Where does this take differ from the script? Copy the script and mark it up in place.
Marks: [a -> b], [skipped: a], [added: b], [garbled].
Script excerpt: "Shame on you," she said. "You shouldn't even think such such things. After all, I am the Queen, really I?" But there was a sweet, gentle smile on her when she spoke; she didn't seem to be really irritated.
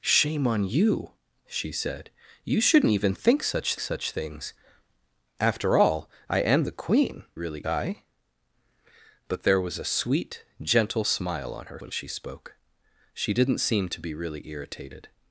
"Shame on you," she said. "You shouldn't even think such such things. After all, I am the Queen, really I?" But there was a sweet, gentle smile on her when she spoke; she didn't seem to be really irritated.